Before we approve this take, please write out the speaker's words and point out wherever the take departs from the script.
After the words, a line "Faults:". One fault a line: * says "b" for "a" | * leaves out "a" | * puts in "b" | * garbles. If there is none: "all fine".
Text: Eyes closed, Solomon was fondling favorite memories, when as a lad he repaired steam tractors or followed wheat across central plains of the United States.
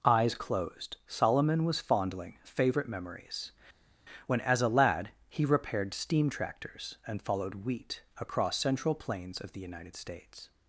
Eyes closed, Solomon was fondling favorite memories, when as a lad he repaired steam tractors and followed wheat across central plains of the United States.
Faults:
* says "and" for "or"